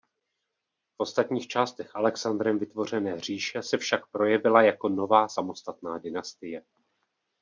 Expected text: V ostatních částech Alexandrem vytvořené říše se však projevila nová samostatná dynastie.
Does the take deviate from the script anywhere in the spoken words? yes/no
yes